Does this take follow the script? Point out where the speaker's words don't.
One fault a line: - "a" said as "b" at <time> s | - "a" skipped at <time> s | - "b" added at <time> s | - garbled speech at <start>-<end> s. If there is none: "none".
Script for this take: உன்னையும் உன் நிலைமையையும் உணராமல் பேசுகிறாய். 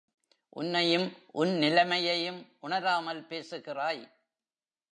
none